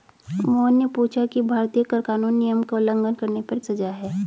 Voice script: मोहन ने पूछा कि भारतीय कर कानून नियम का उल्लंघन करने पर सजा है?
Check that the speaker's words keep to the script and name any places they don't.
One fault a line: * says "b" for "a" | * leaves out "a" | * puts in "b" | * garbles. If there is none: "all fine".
all fine